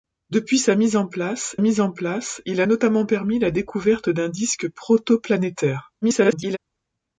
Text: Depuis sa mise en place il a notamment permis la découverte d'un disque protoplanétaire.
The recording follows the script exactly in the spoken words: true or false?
false